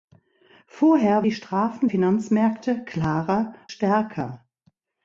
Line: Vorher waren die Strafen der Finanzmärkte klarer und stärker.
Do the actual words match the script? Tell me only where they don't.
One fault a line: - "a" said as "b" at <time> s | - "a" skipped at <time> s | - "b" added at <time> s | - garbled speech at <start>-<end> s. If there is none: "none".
- "waren" skipped at 1.3 s
- "der" skipped at 1.9 s
- "und" skipped at 3.5 s